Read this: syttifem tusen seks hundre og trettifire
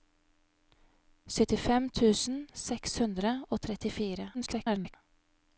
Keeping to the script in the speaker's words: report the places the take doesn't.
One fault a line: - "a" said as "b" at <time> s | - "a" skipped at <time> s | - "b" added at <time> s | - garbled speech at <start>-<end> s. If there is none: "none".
- garbled speech at 4.3-5.0 s